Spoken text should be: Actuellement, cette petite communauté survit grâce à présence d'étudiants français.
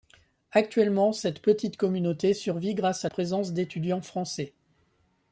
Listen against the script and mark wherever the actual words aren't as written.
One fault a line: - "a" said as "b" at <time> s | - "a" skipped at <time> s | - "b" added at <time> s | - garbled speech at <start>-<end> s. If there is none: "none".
none